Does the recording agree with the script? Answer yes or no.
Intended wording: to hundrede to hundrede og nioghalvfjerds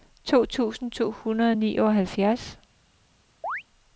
no